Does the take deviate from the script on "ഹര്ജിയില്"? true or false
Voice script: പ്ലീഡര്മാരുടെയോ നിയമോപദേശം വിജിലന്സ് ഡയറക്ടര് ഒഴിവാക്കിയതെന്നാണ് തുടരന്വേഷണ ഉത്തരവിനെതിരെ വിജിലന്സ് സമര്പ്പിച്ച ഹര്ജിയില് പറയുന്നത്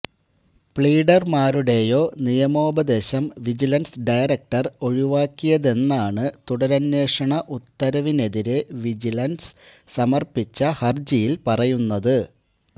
false